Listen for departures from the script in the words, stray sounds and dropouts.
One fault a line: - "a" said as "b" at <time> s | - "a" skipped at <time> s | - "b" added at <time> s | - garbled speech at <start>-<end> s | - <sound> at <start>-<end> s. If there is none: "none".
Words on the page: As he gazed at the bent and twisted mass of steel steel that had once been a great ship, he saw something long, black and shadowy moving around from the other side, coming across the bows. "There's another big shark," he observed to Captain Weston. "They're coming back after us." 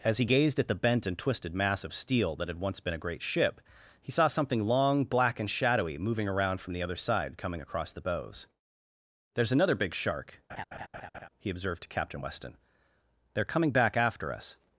- "steel" skipped at 2.4 s
- laugh at 10.5-11.3 s